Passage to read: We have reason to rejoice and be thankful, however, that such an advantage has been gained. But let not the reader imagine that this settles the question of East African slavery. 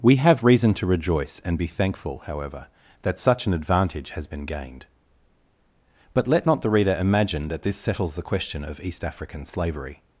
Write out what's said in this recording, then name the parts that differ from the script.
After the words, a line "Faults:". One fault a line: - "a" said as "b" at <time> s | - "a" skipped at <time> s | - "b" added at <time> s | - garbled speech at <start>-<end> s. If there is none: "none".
We have reason to rejoice and be thankful, however, that such an advantage has been gained. But let not the reader imagine that this settles the question of East African slavery.
Faults:
none